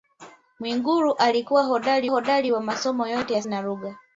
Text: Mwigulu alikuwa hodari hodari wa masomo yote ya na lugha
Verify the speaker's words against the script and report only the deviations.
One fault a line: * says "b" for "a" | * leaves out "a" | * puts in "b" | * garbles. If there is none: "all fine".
all fine